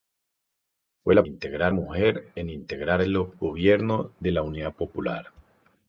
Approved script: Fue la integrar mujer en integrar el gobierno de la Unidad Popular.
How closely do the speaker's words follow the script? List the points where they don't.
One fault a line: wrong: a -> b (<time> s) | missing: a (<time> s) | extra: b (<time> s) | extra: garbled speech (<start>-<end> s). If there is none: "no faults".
no faults